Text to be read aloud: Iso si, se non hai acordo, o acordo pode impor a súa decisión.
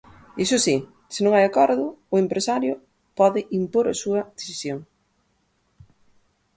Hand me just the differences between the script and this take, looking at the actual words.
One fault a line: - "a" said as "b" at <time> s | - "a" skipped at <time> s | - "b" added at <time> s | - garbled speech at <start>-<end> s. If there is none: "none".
- "acordo" said as "empresario" at 2.2 s